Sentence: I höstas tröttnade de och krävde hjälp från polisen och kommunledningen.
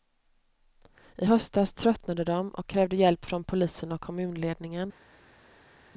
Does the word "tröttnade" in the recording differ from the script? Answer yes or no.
no